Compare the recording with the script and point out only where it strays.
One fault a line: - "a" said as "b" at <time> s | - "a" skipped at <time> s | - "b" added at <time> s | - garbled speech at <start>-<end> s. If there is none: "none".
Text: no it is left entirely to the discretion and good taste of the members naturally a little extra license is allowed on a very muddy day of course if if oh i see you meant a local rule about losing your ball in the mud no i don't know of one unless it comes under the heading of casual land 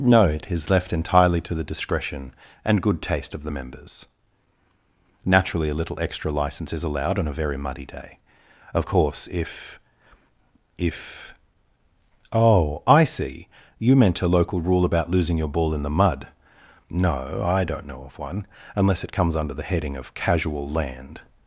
none